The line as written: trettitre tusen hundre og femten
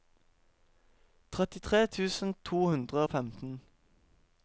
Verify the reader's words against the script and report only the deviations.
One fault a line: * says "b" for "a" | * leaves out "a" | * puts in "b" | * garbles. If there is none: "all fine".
* puts in "to"